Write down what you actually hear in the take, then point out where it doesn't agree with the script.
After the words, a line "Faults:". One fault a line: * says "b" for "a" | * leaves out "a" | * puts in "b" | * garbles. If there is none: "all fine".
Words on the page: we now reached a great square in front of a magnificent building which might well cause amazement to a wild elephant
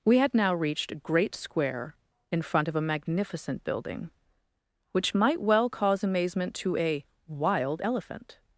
we had now reached a great square in front of a magnificent building which might well cause amazement to a wild elephant
Faults:
* puts in "had"